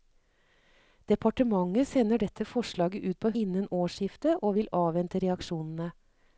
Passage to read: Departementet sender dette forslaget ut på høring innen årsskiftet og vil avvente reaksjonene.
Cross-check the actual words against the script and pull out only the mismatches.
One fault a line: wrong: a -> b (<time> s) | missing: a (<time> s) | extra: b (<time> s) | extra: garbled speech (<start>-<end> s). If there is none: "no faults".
missing: høring (3.3 s)